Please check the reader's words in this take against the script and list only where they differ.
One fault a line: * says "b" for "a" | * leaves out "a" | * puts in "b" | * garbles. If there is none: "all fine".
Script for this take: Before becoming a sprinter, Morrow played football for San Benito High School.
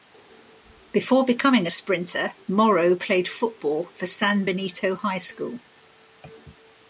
all fine